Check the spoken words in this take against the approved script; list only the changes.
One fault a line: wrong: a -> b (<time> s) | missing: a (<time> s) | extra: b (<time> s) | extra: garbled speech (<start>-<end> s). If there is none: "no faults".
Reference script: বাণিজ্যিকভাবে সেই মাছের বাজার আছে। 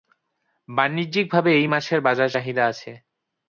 wrong: সেই -> এই (1.5 s)
extra: চাহিদা (2.3 s)